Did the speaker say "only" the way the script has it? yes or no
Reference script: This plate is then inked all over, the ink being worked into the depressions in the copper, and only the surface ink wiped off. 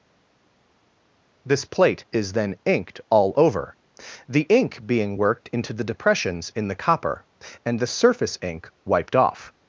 no